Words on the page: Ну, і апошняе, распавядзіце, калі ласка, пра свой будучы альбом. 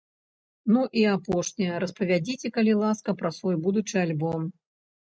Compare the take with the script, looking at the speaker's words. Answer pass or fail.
pass